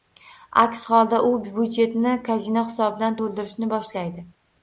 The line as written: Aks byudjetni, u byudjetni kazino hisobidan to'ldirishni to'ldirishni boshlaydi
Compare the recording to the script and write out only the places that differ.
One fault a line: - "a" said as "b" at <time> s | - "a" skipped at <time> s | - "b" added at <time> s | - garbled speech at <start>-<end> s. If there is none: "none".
- "byudjetni" said as "holda" at 0.9 s
- "to'ldirishni" skipped at 3.7 s